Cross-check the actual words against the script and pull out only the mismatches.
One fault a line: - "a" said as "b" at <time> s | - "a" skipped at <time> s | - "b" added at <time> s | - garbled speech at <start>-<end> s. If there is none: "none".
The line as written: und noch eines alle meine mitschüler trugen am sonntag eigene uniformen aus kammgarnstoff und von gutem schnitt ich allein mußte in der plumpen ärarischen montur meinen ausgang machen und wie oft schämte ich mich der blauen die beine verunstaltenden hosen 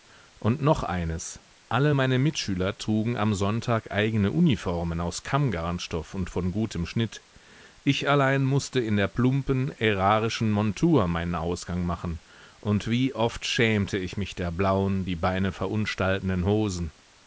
none